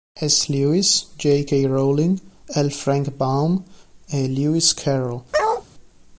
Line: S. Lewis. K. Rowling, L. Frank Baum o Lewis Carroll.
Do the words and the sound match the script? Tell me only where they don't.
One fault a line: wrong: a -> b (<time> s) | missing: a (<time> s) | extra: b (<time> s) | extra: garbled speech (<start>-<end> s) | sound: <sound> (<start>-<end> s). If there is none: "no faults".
extra: J (1.2 s)
wrong: o -> e (4.1 s)
sound: bark (5.3-5.6 s)